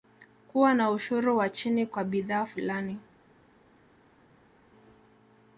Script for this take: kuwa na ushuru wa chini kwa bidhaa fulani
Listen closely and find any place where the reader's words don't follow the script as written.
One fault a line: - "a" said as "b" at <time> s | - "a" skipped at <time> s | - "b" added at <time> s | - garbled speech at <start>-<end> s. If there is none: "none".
none